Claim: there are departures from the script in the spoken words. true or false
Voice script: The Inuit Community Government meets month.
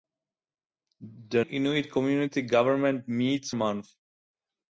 false